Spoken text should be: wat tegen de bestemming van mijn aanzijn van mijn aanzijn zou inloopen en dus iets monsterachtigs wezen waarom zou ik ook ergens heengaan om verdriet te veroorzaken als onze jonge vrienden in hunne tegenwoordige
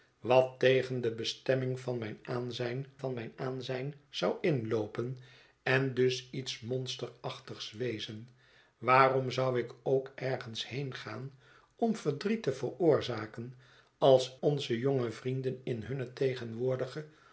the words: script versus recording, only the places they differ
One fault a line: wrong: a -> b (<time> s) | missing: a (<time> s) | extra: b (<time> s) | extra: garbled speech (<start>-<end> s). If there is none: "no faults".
no faults